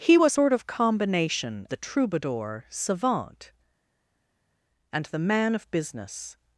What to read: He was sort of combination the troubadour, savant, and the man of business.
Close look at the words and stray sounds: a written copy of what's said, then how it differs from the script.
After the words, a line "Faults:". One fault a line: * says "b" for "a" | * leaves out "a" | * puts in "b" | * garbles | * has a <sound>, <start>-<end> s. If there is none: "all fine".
He was sort of combination the troubadour, savant, and the man of business.
Faults:
all fine